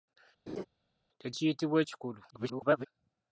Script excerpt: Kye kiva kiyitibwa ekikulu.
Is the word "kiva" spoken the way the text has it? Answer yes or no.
no